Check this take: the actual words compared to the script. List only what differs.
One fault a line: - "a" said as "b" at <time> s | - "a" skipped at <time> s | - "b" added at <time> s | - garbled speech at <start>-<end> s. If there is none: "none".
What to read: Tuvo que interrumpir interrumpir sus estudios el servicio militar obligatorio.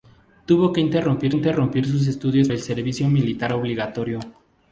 none